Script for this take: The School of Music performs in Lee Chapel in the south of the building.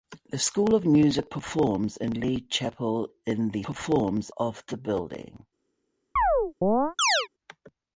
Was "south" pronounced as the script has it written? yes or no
no